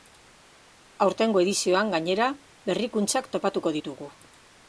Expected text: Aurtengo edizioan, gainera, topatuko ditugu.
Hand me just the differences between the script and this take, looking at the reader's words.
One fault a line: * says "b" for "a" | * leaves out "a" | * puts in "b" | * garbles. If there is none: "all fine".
* puts in "berrikuntzak"